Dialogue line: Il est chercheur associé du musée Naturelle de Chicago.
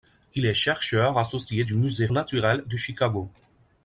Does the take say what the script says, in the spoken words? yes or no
yes